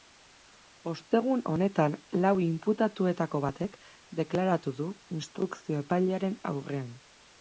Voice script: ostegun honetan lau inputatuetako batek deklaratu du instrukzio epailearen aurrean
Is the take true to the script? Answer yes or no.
yes